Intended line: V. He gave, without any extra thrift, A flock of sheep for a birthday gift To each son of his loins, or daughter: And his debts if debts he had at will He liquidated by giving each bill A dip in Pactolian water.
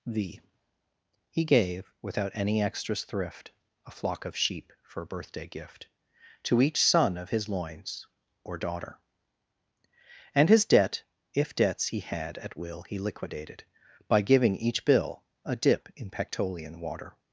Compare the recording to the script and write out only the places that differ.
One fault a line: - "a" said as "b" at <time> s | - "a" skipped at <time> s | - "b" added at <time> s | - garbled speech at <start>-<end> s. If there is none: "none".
- "extra" said as "extras" at 2.6 s
- "debts" said as "debt" at 10.6 s